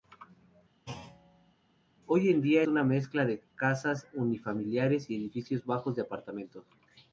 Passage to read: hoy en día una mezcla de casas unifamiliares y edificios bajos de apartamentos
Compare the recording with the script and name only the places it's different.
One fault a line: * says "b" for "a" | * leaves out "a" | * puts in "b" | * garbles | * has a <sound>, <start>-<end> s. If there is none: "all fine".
* has a thud, 0.9-1.5 s